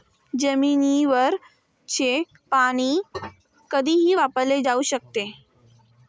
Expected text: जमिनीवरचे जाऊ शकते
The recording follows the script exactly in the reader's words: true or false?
false